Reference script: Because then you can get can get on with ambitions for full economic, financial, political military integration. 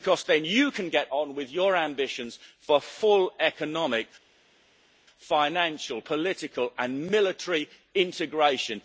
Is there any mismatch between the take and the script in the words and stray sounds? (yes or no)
yes